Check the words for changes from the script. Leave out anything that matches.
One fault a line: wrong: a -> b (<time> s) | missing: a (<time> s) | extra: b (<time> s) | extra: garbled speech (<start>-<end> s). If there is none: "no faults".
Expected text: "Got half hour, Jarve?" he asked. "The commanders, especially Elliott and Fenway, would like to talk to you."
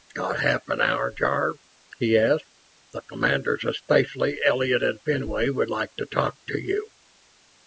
extra: an (0.7 s)